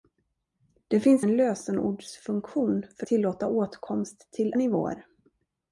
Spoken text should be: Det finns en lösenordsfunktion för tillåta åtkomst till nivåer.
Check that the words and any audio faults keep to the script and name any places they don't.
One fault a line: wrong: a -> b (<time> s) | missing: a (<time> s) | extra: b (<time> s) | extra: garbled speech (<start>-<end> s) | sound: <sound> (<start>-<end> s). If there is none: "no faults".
no faults